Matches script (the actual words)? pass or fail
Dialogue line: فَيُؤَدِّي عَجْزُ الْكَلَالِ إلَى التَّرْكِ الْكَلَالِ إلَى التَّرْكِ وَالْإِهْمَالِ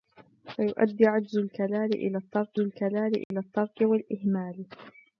pass